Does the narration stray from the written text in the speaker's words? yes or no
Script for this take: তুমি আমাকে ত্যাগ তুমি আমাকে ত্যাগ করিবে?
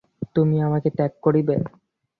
yes